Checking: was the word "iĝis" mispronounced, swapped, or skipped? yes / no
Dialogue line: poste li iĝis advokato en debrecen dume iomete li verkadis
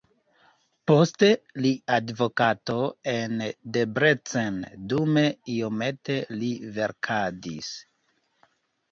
yes